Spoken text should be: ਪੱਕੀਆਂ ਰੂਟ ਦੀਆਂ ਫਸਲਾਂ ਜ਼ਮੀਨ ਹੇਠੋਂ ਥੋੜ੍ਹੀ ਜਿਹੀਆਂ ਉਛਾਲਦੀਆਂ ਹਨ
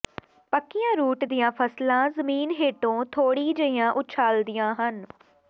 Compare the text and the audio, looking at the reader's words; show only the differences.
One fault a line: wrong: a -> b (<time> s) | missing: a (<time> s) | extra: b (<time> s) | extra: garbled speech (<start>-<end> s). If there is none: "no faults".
no faults